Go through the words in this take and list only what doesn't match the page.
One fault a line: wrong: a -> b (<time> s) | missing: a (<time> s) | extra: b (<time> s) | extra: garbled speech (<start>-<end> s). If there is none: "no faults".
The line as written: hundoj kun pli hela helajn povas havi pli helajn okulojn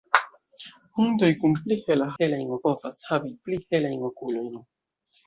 no faults